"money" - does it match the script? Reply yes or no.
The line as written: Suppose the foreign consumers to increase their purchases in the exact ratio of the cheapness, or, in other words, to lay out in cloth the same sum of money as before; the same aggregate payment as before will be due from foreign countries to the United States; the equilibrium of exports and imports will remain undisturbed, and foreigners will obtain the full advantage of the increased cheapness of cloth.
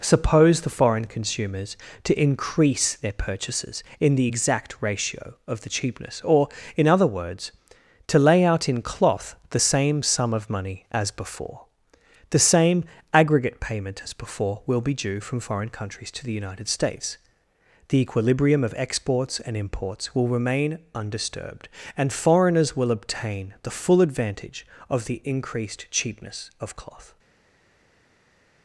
yes